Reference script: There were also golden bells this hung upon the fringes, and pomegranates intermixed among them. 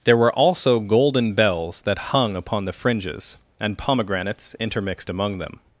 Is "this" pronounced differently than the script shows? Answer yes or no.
yes